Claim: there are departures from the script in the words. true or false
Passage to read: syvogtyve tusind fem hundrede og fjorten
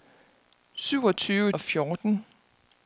true